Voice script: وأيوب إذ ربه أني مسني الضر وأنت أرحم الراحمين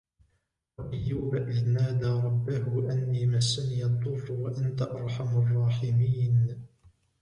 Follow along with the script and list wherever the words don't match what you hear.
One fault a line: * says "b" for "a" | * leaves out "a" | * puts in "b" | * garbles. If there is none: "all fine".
* puts in "نادى"